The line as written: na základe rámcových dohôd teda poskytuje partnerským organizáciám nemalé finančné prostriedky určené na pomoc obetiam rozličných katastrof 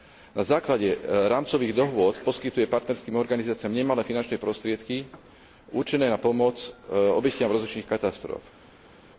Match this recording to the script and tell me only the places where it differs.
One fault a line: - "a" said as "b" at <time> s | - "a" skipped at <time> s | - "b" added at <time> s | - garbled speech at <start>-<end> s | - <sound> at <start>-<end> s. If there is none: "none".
- "teda" skipped at 2.1 s